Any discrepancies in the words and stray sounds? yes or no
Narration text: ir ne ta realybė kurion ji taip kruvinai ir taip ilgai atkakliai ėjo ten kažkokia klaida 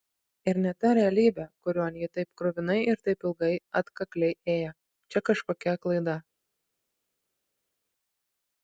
yes